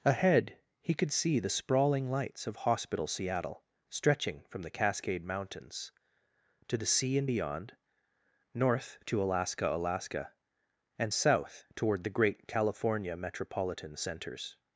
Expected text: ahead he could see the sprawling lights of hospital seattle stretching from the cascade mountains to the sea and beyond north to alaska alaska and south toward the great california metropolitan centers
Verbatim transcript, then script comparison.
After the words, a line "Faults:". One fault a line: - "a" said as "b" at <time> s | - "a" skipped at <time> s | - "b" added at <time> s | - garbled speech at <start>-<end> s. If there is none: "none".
ahead he could see the sprawling lights of hospital seattle stretching from the cascade mountains to the sea and beyond north to alaska alaska and south toward the great california metropolitan centers
Faults:
none